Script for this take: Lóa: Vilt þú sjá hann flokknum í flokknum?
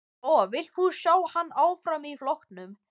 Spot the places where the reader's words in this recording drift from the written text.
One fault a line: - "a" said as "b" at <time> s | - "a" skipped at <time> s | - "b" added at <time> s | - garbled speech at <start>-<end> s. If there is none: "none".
- "flokknum" said as "áfram" at 1.7 s